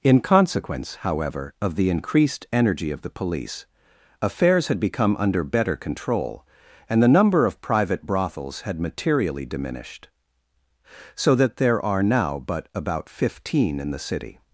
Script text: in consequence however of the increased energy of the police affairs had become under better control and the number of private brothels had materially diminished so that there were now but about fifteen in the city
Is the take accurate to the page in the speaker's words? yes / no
no